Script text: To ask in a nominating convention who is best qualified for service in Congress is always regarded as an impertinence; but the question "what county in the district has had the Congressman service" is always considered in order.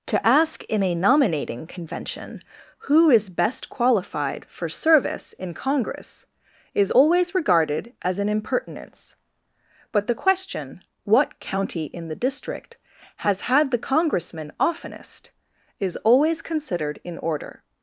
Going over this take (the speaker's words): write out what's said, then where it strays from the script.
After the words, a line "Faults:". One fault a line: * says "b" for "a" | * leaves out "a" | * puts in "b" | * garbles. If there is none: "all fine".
To ask in a nominating convention who is best qualified for service in Congress is always regarded as an impertinence; but the question "what county in the district has had the Congressman oftenest" is always considered in order.
Faults:
* says "oftenest" for "service"